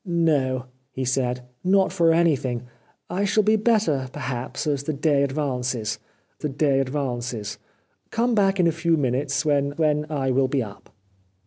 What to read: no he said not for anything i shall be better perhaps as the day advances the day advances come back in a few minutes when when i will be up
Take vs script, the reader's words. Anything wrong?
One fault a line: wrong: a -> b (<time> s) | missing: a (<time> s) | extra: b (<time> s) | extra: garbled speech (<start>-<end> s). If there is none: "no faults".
no faults